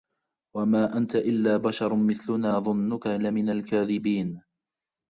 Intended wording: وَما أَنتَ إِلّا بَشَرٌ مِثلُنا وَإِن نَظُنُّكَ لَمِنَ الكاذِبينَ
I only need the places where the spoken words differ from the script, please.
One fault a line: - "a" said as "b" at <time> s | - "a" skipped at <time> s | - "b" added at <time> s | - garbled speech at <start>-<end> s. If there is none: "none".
- "وَإِن" skipped at 2.5 s